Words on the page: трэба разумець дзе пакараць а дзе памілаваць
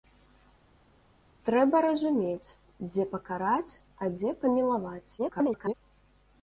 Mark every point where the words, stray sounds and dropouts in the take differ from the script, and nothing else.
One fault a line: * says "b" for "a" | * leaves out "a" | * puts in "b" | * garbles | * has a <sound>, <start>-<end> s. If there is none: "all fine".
* garbles